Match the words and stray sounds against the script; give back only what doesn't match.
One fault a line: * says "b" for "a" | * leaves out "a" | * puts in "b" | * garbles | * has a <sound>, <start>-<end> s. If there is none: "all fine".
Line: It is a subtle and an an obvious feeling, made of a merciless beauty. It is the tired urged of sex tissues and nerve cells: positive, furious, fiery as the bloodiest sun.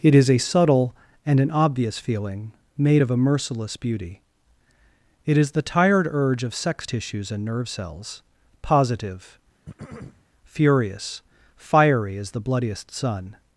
* leaves out "an"
* says "urge" for "urged"
* has a throat clearing, 9.7-10.2 s